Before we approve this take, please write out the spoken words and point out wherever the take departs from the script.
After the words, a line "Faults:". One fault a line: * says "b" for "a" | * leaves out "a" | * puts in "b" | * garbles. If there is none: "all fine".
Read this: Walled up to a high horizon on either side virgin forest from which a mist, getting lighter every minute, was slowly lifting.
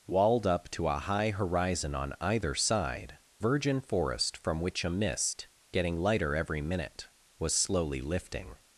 Walled up to a high horizon on either side virgin forest from which a mist, getting lighter every minute, was slowly lifting.
Faults:
all fine